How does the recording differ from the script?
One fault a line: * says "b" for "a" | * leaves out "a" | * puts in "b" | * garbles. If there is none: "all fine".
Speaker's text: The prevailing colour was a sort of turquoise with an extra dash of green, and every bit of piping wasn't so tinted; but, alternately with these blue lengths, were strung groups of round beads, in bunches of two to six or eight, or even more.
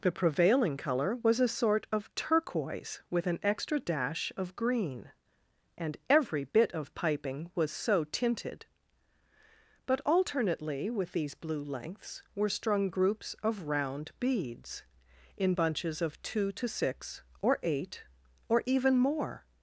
* says "was" for "wasn't"